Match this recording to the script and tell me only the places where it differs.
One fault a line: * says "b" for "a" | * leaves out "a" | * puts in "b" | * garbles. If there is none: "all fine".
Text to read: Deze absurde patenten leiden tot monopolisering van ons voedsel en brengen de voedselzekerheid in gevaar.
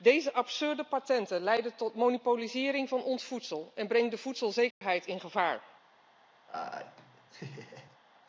all fine